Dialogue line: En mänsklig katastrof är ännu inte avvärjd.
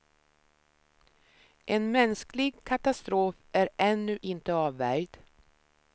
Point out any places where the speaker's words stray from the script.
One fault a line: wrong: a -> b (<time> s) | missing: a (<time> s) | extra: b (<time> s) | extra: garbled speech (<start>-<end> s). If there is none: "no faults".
no faults